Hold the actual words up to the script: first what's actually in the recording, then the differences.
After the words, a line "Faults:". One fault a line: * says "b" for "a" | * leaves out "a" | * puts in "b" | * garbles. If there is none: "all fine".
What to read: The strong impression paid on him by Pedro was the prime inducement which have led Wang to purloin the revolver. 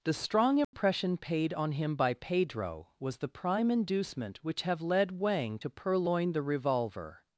The strong impression paid on him by Pedro was the prime inducement which have led Wang to purloin the revolver.
Faults:
all fine